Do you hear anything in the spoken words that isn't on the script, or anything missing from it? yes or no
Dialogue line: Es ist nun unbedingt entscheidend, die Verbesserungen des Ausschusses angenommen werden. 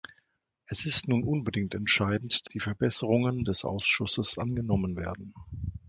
no